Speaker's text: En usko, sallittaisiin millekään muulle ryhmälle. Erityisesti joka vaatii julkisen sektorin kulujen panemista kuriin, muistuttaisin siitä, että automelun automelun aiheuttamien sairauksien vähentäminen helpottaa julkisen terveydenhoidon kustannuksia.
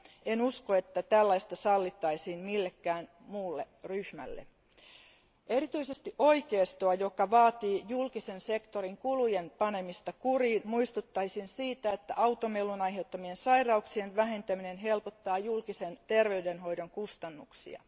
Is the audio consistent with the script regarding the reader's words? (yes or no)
no